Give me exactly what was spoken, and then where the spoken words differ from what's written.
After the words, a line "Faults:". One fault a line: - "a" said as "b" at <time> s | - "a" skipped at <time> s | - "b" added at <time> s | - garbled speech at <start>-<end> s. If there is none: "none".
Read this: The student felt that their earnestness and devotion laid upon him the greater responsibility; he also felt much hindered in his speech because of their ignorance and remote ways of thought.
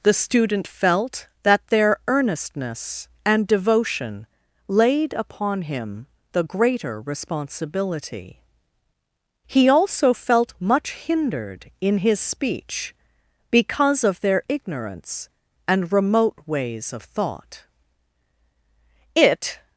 The student felt that their earnestness and devotion laid upon him the greater responsibility; he also felt much hindered in his speech because of their ignorance and remote ways of thought. It
Faults:
- "It" added at 19.2 s